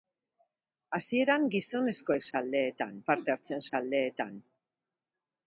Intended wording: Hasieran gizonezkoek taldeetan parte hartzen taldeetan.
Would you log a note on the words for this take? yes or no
no